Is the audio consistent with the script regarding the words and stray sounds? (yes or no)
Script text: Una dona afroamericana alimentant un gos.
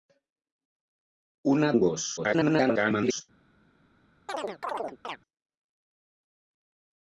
no